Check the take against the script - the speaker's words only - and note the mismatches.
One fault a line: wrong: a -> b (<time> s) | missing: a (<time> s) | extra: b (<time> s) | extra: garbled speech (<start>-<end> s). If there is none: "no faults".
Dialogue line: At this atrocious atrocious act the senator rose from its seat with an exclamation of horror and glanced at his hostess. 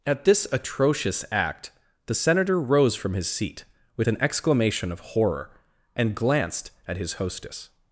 missing: atrocious (1.2 s)
wrong: its -> his (3.1 s)